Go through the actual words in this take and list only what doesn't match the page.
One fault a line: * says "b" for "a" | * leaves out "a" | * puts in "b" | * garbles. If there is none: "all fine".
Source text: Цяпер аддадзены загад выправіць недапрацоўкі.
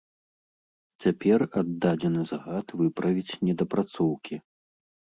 all fine